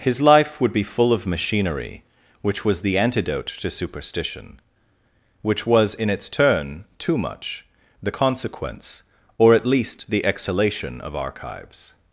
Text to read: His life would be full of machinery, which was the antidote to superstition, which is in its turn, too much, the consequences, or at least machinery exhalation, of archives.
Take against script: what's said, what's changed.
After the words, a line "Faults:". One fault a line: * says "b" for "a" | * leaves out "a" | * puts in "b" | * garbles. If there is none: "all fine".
His life would be full of machinery, which was the antidote to superstition, which was in its turn, too much, the consequence, or at least the exhalation, of archives.
Faults:
* says "was" for "is"
* says "consequence" for "consequences"
* says "the" for "machinery"